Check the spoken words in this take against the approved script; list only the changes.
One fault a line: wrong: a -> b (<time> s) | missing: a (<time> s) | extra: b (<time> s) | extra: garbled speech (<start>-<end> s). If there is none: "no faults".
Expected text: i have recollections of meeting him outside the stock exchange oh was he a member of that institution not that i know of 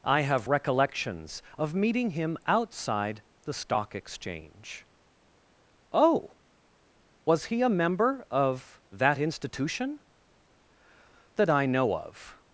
missing: not (10.0 s)